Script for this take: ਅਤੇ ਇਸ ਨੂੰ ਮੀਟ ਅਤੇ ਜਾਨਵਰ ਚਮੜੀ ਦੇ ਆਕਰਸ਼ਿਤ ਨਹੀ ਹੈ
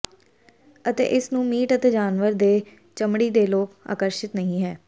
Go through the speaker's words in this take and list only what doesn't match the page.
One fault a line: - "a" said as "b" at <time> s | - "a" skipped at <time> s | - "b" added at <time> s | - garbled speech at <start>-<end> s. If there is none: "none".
- "ਦੇ" added at 2.3 s
- "ਲੋਕ" added at 3.5 s